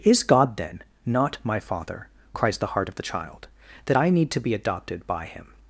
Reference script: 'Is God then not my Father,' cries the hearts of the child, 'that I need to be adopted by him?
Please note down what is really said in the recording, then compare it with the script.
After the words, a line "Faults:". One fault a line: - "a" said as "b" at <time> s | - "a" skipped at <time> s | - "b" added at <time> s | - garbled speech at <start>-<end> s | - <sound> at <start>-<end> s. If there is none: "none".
'Is God then not my Father,' cries the heart of the child, 'that I need to be adopted by him?
Faults:
- "hearts" said as "heart" at 2.7 s